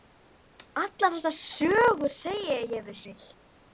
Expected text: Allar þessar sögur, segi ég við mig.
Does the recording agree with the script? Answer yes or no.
yes